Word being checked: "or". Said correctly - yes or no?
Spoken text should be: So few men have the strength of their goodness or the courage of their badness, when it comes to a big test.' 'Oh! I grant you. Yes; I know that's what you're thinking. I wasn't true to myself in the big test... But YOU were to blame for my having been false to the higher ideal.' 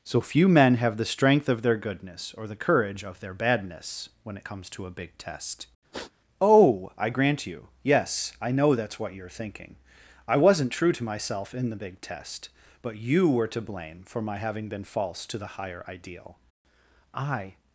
yes